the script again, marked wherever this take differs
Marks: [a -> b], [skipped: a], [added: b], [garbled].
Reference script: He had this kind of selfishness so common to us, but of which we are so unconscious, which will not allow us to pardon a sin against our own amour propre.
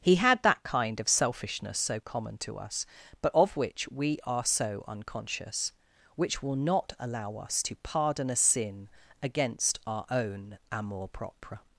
He had [this -> that] kind of selfishness so common to us, but of which we are so unconscious, which will not allow us to pardon a sin against our own amour propre.